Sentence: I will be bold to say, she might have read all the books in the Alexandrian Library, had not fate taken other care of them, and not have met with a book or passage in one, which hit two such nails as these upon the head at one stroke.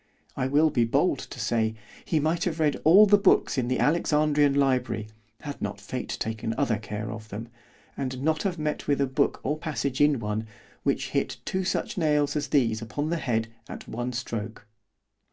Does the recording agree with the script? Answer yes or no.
no